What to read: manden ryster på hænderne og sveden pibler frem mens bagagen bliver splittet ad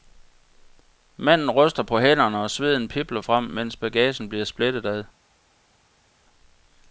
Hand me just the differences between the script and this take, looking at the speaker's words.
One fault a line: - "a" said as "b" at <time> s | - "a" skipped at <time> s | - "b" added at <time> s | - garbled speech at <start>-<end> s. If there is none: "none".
none